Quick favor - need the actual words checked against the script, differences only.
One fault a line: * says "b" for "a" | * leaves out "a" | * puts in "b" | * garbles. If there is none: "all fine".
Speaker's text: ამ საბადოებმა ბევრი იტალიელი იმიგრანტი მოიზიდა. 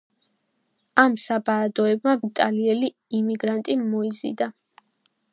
* leaves out "ბევრი"